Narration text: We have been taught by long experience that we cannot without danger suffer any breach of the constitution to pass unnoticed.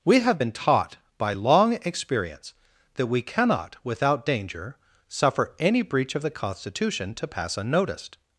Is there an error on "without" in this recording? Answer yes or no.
no